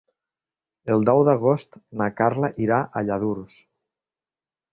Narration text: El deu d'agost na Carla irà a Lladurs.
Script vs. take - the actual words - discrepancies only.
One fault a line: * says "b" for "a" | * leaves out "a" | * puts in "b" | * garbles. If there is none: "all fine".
all fine